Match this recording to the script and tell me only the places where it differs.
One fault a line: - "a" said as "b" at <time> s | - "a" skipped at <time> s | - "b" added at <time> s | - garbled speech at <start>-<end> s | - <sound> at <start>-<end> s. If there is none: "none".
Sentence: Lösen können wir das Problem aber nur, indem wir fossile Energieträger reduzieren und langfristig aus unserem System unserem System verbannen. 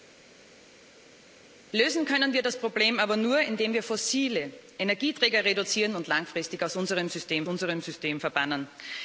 none